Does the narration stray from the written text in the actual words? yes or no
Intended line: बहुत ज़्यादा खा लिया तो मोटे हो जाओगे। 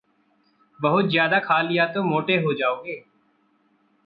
no